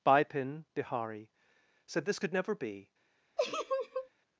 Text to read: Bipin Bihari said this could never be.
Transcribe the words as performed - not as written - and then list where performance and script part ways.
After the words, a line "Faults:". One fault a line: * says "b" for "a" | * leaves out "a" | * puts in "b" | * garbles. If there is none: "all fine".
Bipin Bihari said this could never be.
Faults:
all fine